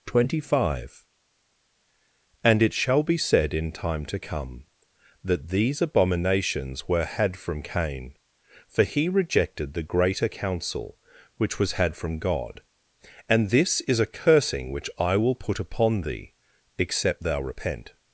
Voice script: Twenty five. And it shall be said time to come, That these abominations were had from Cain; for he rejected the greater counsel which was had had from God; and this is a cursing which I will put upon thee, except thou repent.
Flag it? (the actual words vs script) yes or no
yes